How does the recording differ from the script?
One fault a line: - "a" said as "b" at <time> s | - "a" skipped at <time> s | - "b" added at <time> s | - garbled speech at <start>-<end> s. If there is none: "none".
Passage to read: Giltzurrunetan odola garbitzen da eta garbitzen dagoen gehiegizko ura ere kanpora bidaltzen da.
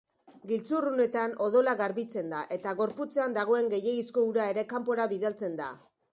- "garbitzen" said as "gorputzean" at 2.8 s